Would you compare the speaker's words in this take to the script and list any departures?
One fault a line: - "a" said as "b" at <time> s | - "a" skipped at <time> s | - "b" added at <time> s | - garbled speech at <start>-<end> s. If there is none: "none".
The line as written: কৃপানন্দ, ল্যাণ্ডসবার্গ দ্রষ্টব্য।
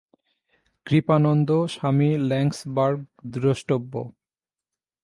- "স্বামী" added at 1.7 s